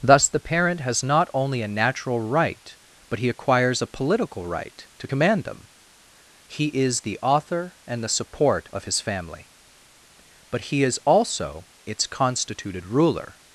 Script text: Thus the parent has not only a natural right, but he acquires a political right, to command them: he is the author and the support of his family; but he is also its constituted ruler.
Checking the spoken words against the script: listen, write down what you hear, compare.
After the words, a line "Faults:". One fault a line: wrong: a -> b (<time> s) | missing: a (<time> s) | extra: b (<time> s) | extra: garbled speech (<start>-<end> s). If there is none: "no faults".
Thus the parent has not only a natural right, but he acquires a political right, to command them: he is the author and the support of his family; but he is also its constituted ruler.
Faults:
no faults